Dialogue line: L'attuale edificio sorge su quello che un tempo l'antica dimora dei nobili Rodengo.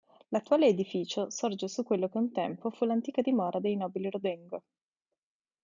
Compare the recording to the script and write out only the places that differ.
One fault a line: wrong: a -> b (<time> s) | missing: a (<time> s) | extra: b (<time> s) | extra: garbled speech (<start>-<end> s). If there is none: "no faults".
extra: fu (2.7 s)